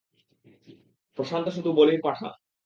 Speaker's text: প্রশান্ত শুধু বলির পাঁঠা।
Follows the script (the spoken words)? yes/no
yes